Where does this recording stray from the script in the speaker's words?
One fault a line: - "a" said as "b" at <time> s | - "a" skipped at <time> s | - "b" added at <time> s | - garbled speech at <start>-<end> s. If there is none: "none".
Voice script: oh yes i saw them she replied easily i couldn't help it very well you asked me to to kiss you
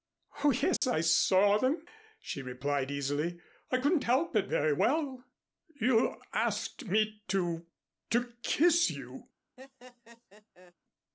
none